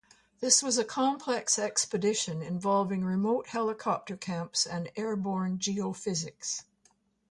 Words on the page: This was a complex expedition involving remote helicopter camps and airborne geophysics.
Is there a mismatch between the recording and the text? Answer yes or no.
no